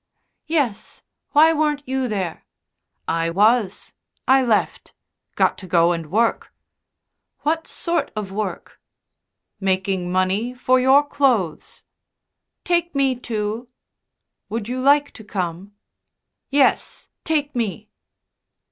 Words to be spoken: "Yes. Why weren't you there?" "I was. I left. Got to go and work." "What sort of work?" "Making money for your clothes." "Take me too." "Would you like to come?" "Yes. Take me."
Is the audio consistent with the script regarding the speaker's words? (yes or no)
yes